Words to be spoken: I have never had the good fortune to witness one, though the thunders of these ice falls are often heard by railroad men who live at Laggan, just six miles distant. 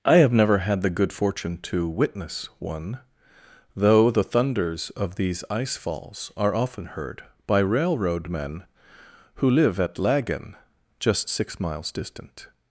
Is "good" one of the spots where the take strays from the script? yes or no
no